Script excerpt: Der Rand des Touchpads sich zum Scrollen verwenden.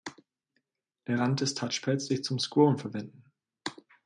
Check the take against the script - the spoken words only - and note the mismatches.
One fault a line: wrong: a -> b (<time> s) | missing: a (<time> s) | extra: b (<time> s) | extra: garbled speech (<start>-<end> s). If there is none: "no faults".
no faults